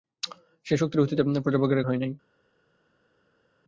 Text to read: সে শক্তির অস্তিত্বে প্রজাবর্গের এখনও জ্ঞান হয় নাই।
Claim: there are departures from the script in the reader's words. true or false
true